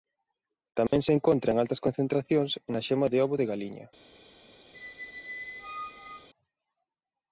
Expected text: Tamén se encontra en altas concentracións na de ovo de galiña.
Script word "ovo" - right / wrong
right